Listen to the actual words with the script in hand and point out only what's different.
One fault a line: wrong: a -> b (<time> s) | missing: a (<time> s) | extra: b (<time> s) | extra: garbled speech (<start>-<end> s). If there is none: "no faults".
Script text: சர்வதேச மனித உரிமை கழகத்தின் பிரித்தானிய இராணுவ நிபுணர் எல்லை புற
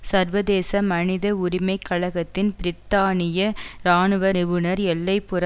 no faults